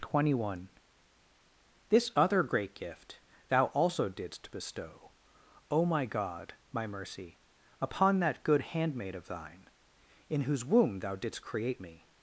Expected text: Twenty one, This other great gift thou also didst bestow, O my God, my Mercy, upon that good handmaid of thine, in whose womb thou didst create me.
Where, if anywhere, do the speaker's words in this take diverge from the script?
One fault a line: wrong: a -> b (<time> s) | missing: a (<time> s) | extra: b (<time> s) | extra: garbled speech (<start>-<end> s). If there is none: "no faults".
no faults